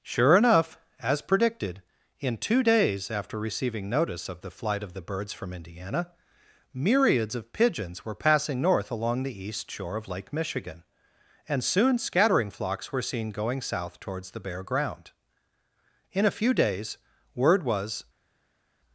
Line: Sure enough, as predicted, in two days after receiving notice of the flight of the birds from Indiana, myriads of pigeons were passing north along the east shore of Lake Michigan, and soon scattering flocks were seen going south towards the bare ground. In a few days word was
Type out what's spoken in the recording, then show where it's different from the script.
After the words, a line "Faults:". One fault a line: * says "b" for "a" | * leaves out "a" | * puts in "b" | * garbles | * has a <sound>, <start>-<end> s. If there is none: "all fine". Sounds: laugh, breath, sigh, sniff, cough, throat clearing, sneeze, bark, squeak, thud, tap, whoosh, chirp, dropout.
Sure enough, as predicted, in two days after receiving notice of the flight of the birds from Indiana, myriads of pigeons were passing north along the east shore of Lake Michigan, and soon scattering flocks were seen going south towards the bare ground. In a few days word was
Faults:
all fine